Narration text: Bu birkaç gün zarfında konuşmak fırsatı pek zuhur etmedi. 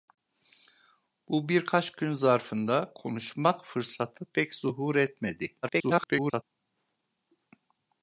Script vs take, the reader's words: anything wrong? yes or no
yes